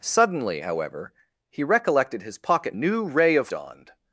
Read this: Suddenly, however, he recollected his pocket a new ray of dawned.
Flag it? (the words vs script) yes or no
no